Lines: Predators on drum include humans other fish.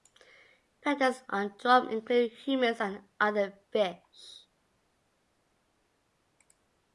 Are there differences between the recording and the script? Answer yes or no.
yes